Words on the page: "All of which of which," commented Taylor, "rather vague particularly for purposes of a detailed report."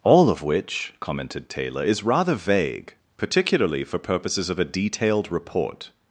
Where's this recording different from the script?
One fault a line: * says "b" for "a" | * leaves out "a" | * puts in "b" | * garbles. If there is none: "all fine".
* leaves out "of which"
* puts in "is"